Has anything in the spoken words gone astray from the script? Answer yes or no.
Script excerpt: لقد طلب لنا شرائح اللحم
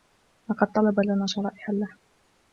no